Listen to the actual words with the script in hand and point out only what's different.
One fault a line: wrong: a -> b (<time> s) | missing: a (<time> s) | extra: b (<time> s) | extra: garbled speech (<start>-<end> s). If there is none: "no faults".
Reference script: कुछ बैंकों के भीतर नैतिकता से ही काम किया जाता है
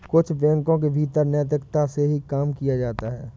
no faults